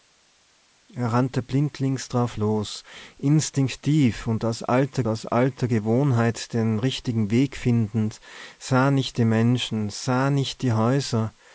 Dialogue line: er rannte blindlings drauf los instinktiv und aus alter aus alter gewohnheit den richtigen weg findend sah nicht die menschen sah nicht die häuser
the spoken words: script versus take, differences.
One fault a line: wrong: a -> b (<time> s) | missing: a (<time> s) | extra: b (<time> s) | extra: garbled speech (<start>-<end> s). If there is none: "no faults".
no faults